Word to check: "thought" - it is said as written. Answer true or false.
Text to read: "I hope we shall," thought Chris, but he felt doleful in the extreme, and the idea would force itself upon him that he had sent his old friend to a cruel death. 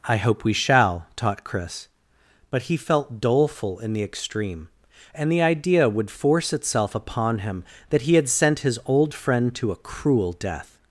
false